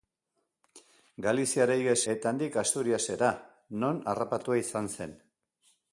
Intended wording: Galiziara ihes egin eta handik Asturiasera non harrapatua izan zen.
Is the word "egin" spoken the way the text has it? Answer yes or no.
no